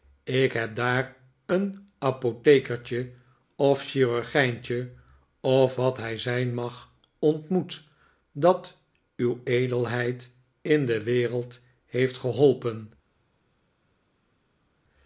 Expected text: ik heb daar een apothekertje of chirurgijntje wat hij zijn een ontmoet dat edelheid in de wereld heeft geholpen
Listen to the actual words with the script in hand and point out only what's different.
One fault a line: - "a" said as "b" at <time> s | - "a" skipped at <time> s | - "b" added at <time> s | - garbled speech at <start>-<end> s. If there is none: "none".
- "of" added at 5.4 s
- "een" said as "mag" at 6.5 s
- "uw" added at 9.2 s